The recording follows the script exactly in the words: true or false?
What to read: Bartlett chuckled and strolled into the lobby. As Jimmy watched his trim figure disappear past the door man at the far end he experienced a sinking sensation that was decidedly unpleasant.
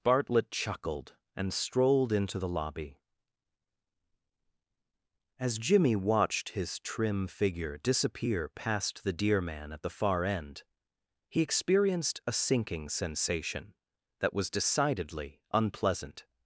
false